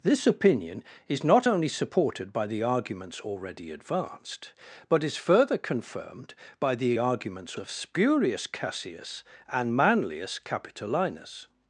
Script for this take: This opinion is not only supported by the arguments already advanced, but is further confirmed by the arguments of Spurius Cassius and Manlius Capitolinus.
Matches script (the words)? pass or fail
pass